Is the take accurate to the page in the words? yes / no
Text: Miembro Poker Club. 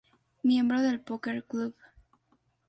no